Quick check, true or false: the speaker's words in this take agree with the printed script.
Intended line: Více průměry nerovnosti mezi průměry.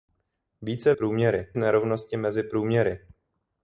true